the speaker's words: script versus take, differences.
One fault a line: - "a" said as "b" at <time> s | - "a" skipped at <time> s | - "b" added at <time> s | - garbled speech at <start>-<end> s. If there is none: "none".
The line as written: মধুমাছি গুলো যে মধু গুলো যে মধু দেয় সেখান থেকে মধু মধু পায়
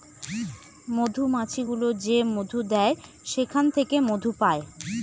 - "গুলো যে মধু" skipped at 2.6 s
- "মধু" skipped at 4.3 s